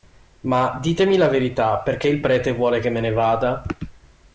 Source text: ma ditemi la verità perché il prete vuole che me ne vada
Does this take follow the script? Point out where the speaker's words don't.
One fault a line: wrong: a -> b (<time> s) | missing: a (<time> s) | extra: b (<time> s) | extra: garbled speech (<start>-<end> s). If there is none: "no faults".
no faults